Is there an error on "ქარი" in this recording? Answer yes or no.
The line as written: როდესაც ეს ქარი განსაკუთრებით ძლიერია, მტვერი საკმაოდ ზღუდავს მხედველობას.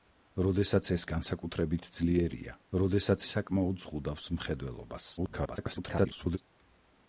yes